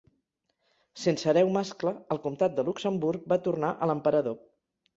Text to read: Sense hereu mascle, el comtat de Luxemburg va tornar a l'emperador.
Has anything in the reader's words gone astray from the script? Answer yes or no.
no